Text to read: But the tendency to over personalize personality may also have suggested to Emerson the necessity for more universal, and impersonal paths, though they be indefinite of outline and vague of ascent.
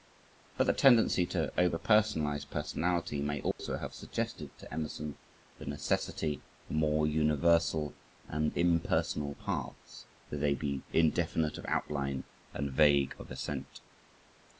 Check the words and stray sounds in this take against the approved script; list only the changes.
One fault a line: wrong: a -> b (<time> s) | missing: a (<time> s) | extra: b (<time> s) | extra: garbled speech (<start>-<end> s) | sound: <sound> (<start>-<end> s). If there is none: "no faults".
sound: dropout (3.5-3.6 s)